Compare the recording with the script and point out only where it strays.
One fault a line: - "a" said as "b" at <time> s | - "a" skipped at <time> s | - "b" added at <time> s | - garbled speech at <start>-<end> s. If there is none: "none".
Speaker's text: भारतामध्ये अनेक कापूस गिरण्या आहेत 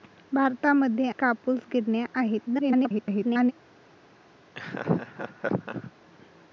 - "अनेक" skipped at 1.1 s
- garbled speech at 2.5-3.5 s